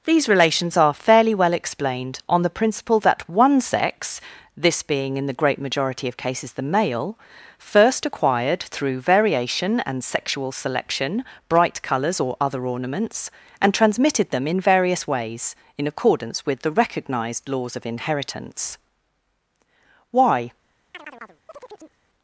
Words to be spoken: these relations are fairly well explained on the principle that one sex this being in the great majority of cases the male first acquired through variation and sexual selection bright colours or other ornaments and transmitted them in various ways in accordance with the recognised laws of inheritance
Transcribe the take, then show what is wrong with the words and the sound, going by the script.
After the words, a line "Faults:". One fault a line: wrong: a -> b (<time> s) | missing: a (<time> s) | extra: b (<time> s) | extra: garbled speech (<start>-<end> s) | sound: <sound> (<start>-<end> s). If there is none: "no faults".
these relations are fairly well explained on the principle that one sex this being in the great majority of cases the male first acquired through variation and sexual selection bright colours or other ornaments and transmitted them in various ways in accordance with the recognised laws of inheritance why
Faults:
extra: why (20.1 s)
sound: chirp (20.9-22.0 s)